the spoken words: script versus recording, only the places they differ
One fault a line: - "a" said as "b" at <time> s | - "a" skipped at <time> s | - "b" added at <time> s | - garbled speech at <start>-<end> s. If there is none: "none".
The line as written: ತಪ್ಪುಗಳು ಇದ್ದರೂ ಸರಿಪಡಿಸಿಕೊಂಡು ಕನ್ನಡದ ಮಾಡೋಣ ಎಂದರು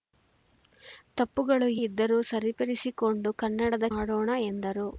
none